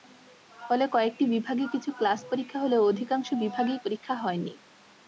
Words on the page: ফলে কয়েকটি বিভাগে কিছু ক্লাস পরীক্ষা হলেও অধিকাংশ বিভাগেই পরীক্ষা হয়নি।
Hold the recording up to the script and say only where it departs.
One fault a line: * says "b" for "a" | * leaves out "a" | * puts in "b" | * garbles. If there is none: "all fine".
all fine